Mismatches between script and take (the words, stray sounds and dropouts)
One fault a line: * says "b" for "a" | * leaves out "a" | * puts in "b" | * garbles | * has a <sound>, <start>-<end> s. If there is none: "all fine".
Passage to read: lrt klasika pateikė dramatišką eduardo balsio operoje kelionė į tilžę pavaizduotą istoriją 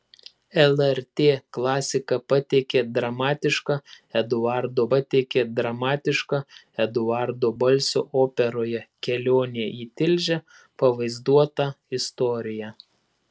* puts in "pateikė dramatišką eduardo"